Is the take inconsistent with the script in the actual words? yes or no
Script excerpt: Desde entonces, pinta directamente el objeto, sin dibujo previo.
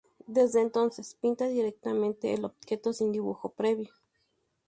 no